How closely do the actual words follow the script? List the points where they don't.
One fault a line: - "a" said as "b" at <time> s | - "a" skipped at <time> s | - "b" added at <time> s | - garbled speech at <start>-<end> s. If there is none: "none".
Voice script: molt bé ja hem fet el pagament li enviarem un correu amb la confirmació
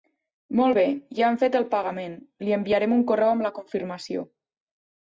none